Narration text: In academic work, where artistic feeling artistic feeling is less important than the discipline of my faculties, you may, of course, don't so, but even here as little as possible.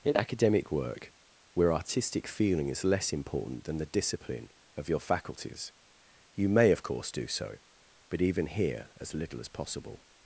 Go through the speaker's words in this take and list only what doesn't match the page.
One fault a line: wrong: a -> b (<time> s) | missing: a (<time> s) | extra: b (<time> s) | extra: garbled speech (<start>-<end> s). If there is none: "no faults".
missing: artistic feeling (2.7 s)
wrong: my -> your (4.9 s)
wrong: don't -> do (7.1 s)